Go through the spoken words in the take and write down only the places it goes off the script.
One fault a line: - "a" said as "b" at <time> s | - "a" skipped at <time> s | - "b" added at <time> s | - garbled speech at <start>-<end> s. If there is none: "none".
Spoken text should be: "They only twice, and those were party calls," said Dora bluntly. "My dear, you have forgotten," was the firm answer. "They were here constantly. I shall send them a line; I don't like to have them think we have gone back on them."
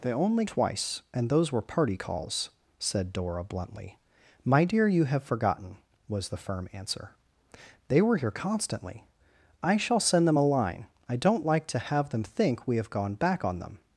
none